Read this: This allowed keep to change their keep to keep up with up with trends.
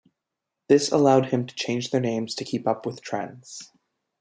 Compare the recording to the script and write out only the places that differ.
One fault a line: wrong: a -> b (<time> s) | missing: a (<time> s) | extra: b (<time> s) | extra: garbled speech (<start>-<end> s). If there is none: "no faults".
wrong: keep -> him (1.3 s)
wrong: keep -> names (2.0 s)
missing: up with (3.0 s)